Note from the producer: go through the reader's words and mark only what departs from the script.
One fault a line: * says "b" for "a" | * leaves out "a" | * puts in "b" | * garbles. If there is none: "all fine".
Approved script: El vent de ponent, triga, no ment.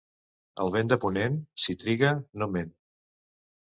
* puts in "si"